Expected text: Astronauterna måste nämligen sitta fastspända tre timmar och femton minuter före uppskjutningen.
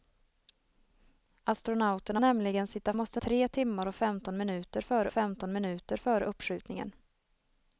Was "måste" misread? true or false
true